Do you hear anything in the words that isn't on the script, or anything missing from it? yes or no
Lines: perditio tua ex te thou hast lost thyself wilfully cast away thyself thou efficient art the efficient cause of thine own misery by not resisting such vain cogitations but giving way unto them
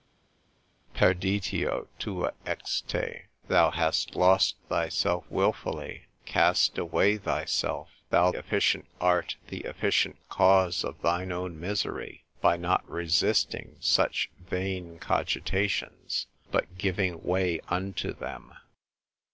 no